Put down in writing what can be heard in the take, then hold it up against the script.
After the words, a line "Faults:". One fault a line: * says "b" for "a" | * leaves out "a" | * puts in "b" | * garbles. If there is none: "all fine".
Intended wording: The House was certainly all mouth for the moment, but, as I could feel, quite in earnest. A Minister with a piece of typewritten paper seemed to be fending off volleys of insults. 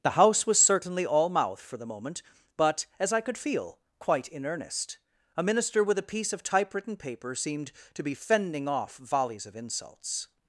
The House was certainly all mouth for the moment, but, as I could feel, quite in earnest. A Minister with a piece of typewritten paper seemed to be fending off volleys of insults.
Faults:
all fine